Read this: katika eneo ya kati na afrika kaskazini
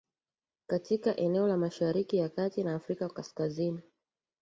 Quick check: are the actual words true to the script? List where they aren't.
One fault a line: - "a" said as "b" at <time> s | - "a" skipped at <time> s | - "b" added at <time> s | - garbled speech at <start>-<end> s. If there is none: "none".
- "la mashariki" added at 1.5 s